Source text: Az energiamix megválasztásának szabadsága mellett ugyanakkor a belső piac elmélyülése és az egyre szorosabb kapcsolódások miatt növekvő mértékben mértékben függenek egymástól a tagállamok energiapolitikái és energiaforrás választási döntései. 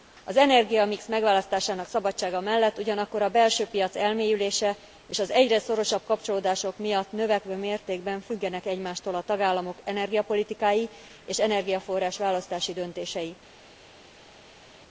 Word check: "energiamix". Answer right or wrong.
right